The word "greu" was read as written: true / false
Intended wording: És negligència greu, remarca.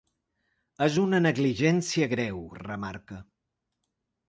true